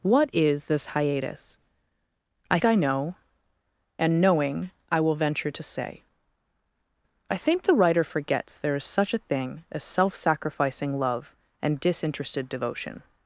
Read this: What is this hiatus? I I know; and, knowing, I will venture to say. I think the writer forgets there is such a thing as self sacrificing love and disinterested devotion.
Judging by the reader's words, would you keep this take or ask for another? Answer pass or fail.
pass